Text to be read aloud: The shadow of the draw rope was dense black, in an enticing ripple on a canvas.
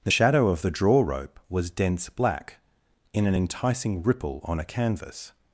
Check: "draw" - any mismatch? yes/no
no